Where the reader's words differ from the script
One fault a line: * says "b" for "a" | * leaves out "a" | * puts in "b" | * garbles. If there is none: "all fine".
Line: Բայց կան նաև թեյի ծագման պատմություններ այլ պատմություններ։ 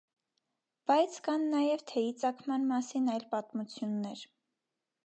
* says "մասին" for "պատմություններ"